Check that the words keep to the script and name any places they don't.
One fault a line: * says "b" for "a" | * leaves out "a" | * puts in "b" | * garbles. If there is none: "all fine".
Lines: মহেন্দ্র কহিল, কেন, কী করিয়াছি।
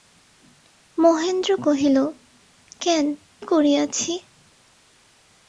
* leaves out "কী"